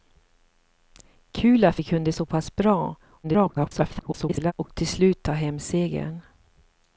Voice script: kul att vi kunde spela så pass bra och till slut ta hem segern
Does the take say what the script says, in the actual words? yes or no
no